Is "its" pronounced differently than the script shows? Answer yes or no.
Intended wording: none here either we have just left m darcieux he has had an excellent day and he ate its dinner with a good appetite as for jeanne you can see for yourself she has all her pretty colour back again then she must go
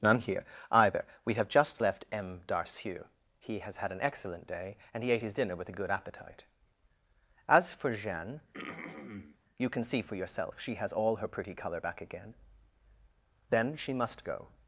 yes